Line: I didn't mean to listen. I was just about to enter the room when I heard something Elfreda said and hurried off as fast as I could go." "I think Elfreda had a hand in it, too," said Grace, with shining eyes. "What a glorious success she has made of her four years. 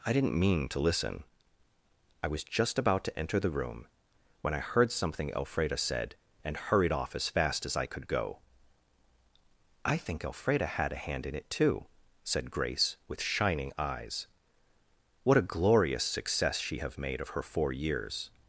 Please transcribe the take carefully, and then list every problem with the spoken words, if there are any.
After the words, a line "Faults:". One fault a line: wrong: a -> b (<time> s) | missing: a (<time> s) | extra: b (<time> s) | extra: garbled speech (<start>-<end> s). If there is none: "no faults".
I didn't mean to listen. I was just about to enter the room when I heard something Elfreda said and hurried off as fast as I could go." "I think Elfreda had a hand in it, too," said Grace, with shining eyes. "What a glorious success she have made of her four years.
Faults:
wrong: has -> have (16.8 s)